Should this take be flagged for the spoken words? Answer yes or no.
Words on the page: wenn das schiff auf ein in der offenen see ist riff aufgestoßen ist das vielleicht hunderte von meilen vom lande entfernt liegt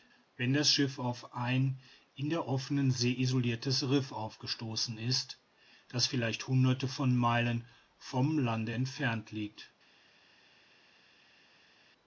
yes